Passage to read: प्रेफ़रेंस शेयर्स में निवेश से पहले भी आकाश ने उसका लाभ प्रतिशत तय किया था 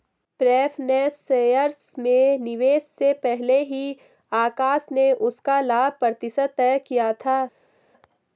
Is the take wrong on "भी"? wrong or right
wrong